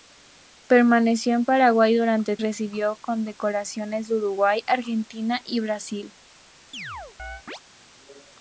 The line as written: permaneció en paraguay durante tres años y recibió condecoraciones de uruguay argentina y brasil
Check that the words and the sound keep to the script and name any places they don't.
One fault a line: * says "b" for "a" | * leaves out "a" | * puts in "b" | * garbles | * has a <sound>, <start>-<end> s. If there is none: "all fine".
* leaves out "tres años y"
* has a chirp, 6.7-7.6 s